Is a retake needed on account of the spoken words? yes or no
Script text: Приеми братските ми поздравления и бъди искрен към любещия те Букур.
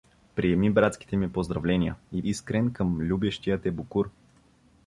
yes